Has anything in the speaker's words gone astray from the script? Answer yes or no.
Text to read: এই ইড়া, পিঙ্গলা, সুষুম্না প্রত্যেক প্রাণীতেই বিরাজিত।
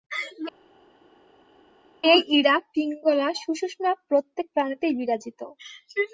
no